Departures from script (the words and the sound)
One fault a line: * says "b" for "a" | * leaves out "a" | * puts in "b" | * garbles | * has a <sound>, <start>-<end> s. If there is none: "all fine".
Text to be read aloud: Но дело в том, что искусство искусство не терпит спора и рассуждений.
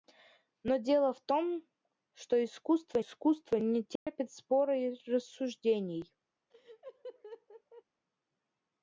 * has a dropout, 4.0-4.1 s
* has a laugh, 6.5-7.8 s